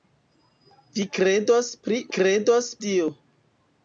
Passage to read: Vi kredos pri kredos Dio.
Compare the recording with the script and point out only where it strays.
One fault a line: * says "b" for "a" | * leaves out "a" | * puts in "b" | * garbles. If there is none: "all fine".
all fine